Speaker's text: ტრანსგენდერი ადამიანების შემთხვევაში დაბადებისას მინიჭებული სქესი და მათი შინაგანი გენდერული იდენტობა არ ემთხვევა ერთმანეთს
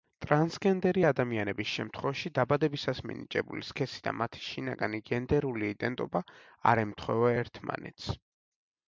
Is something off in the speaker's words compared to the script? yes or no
no